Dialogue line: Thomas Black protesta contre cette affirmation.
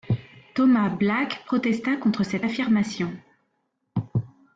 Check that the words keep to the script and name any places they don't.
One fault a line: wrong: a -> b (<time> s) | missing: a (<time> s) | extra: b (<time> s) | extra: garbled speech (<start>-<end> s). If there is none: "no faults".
no faults